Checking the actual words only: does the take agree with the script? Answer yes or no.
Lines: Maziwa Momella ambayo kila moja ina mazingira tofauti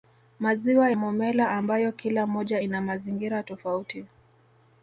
yes